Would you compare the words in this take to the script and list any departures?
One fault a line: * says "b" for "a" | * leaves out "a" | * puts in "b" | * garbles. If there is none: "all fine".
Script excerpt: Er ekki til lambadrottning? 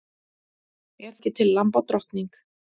all fine